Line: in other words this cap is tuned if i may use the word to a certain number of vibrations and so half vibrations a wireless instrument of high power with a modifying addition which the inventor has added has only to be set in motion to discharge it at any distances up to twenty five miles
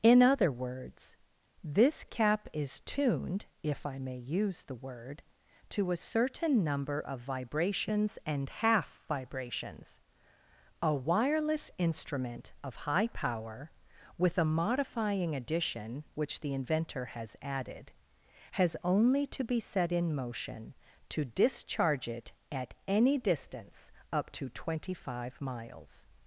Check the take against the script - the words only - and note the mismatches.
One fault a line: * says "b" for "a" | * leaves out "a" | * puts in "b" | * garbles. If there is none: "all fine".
* leaves out "so"
* says "distance" for "distances"